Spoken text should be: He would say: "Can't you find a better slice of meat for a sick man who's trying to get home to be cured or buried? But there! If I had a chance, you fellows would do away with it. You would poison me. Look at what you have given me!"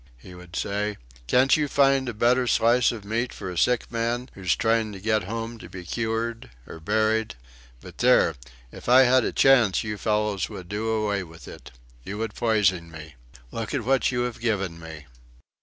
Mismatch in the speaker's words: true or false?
false